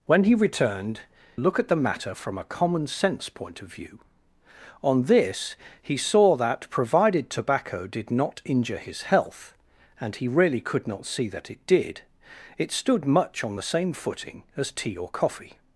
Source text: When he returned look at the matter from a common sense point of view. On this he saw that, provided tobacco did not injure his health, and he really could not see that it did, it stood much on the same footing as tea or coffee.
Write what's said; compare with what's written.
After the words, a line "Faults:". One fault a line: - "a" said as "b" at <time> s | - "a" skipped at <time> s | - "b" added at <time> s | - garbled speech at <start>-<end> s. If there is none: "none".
When he returned look at the matter from a common sense point of view. On this he saw that, provided tobacco did not injure his health, and he really could not see that it did, it stood much on the same footing as tea or coffee.
Faults:
none